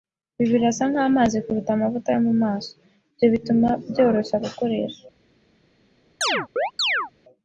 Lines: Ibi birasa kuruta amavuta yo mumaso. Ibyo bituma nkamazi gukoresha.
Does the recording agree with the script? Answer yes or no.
no